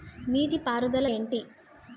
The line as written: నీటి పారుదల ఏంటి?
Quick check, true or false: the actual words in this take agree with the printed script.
true